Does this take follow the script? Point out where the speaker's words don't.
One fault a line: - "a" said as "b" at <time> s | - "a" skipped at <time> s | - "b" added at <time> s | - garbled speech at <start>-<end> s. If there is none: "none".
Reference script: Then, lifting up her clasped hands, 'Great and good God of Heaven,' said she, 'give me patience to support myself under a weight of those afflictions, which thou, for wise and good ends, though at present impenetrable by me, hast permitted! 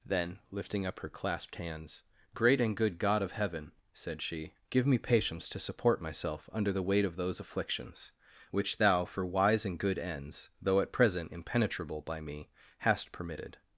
- "a" said as "the" at 6.7 s